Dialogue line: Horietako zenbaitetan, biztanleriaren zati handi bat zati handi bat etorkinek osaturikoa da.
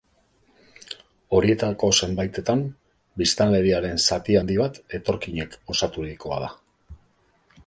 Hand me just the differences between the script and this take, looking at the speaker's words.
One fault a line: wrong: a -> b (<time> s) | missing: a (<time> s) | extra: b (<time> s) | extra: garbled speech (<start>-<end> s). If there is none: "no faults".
missing: zati handi bat (4.8 s)